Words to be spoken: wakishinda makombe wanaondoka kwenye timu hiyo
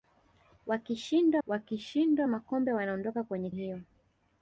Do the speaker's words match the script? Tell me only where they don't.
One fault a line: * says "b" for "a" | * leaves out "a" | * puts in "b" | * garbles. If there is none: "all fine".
* puts in "wakishinda"
* leaves out "timu"